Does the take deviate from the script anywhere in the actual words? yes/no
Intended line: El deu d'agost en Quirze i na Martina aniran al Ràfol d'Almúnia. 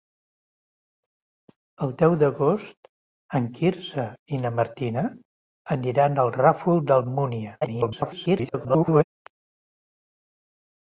yes